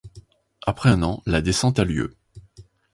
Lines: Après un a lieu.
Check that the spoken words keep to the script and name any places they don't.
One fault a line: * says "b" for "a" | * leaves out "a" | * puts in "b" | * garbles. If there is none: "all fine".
* puts in "an la descente"